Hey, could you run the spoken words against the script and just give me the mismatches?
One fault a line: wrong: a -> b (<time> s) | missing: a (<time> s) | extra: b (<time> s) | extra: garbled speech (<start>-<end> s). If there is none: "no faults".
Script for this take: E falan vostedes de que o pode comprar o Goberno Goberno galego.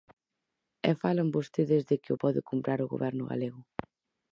missing: Goberno (3.2 s)